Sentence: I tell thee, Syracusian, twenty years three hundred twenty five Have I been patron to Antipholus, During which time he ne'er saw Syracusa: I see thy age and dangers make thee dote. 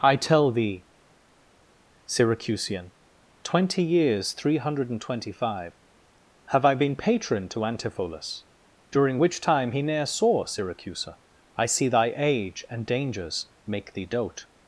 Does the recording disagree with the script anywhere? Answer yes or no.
yes